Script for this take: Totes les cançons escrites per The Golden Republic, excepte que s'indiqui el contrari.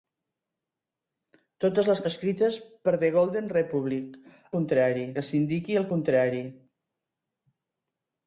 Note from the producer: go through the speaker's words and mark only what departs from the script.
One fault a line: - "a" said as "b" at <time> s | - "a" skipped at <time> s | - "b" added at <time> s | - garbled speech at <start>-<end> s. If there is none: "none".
- "cançons" skipped at 2.0 s
- "excepte" said as "contrari" at 4.6 s